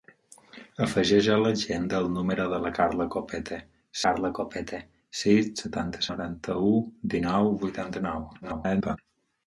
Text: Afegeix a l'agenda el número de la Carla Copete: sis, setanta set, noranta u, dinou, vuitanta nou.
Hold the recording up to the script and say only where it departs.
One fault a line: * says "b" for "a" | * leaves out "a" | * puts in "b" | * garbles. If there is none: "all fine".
* puts in "Carla Copete"
* leaves out "set"
* garbles